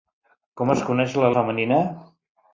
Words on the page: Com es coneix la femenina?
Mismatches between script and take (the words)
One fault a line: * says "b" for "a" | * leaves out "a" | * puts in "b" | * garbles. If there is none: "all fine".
all fine